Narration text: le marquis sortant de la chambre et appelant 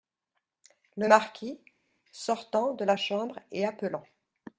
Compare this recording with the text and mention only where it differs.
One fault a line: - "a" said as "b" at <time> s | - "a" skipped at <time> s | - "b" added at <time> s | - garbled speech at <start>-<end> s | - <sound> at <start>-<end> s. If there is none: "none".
none